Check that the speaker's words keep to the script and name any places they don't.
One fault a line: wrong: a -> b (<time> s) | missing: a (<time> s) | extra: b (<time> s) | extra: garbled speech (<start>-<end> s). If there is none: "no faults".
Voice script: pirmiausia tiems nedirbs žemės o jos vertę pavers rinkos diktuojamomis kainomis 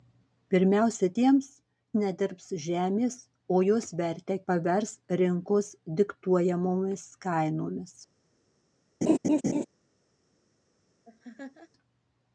no faults